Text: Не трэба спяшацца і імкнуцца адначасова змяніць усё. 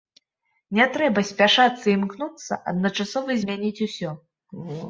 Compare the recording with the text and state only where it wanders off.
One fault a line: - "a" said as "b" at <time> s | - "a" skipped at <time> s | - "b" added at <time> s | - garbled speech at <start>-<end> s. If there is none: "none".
none